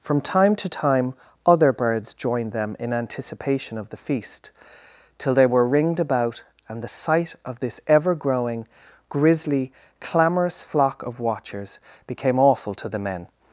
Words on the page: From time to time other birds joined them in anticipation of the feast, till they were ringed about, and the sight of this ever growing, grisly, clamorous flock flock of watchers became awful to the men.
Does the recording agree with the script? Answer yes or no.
no